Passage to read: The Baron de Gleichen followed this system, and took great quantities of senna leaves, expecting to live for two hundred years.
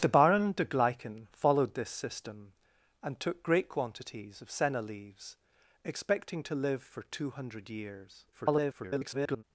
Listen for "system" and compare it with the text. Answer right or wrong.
right